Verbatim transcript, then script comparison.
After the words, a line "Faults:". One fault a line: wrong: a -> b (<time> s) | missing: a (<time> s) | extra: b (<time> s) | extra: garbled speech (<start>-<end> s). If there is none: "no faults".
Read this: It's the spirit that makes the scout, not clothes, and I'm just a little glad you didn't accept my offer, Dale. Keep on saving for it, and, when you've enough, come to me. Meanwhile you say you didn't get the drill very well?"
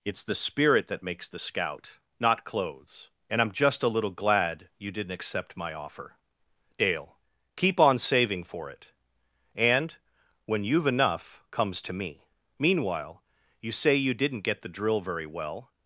It's the spirit that makes the scout, not clothes, and I'm just a little glad you didn't accept my offer, Dale. Keep on saving for it, and, when you've enough, comes to me. Meanwhile you say you didn't get the drill very well?"
Faults:
wrong: come -> comes (11.5 s)